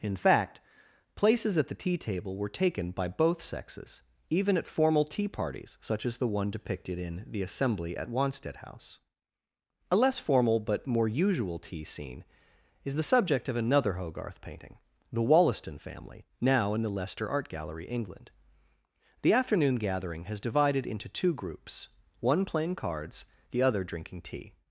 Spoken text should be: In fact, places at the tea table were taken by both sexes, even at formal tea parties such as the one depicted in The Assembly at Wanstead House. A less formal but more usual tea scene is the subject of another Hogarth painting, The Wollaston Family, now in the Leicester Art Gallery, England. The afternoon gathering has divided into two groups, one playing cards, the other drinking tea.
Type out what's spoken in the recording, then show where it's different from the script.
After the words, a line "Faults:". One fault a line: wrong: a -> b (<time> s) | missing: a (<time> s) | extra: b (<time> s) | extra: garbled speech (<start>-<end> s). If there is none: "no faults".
In fact, places at the tea table were taken by both sexes, even at formal tea parties such as the one depicted in The Assembly at Wanstead House. A less formal but more usual tea scene is the subject of another Hogarth painting, The Wollaston Family, now in the Leicester Art Gallery, England. The afternoon gathering has divided into two groups, one playing cards, the other drinking tea.
Faults:
no faults